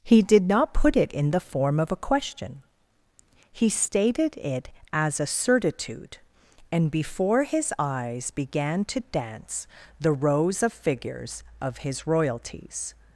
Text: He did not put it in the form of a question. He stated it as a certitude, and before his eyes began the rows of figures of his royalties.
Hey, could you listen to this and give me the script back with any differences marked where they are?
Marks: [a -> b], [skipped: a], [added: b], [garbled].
He did not put it in the form of a question. He stated it as a certitude, and before his eyes began [added: to dance] the rows of figures of his royalties.